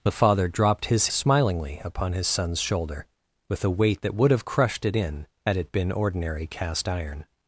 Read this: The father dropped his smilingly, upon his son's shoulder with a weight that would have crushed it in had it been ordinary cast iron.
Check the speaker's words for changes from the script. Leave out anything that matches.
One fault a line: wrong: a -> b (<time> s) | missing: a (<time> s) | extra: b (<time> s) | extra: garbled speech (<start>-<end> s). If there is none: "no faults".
no faults